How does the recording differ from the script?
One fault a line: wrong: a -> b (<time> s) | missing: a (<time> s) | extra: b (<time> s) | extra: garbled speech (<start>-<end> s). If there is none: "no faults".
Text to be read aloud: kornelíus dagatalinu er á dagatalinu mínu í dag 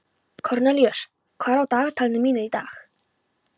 wrong: dagatalinu -> hvað (1.4 s)